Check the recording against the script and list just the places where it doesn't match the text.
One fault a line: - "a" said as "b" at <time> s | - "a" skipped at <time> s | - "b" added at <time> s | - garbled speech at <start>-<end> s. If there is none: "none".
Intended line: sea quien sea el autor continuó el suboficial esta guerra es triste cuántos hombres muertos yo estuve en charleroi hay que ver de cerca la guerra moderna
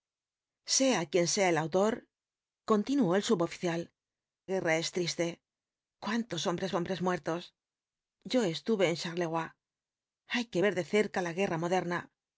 - "esta" skipped at 3.9 s
- "hombres" added at 6.7 s